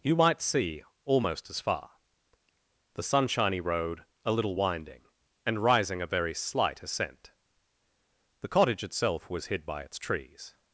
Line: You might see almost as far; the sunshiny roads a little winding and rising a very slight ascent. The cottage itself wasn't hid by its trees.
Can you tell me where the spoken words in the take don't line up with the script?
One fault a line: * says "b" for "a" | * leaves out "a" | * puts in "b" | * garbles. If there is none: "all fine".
* says "road" for "roads"
* says "was" for "wasn't"